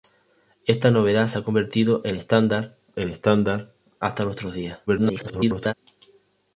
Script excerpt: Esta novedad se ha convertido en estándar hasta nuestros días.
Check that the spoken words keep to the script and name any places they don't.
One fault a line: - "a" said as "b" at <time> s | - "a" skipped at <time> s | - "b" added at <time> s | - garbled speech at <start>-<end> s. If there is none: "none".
- "en estándar" added at 3.0 s
- garbled speech at 4.9-5.7 s